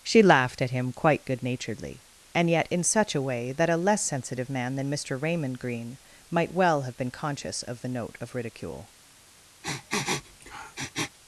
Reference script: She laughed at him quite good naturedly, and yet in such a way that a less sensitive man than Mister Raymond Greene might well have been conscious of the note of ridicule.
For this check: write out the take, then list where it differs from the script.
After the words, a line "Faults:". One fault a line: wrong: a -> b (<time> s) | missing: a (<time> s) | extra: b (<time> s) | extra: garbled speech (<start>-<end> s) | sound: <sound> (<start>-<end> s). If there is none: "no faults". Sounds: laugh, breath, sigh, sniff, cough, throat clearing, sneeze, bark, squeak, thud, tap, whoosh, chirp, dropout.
She laughed at him quite good naturedly, and yet in such a way that a less sensitive man than Mister Raymond Greene might well have been conscious of the note of ridicule.
Faults:
sound: sniff (9.6-11.2 s)